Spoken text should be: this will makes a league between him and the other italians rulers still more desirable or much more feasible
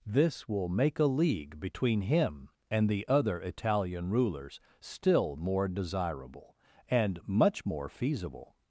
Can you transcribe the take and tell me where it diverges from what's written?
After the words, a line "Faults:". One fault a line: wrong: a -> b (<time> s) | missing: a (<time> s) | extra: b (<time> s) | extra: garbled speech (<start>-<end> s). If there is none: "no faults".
this will make a league between him and the other italian rulers still more desirable and much more feasible
Faults:
wrong: makes -> make (0.7 s)
wrong: italians -> italian (3.4 s)
wrong: or -> and (6.9 s)